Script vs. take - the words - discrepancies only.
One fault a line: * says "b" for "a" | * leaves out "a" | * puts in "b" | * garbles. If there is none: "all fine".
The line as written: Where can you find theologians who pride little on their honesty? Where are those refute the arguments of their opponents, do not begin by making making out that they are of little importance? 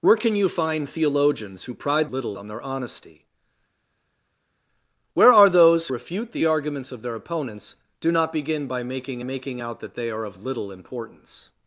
all fine